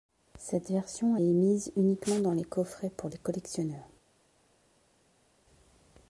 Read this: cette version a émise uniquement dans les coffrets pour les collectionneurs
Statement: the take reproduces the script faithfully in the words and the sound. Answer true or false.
true